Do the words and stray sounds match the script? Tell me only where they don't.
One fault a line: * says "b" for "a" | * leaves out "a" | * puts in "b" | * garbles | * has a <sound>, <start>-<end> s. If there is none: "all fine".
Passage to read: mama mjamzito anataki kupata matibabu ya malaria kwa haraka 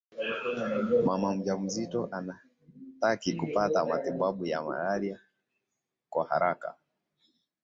all fine